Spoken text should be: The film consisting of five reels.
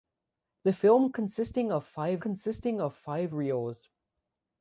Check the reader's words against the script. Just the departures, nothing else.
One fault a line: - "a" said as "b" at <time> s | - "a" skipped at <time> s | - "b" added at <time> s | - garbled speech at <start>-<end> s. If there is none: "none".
- "consisting of five" added at 2.2 s